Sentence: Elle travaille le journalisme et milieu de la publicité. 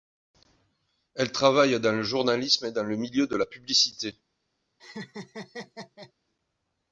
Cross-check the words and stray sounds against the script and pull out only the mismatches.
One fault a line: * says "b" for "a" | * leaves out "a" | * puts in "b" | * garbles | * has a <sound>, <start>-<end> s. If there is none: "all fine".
* puts in "dans"
* puts in "dans le"
* has a laugh, 4.8-6.1 s